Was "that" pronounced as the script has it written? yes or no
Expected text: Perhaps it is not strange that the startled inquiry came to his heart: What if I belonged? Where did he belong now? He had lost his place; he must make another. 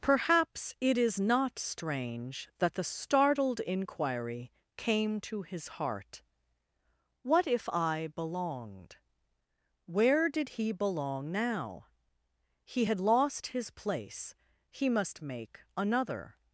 yes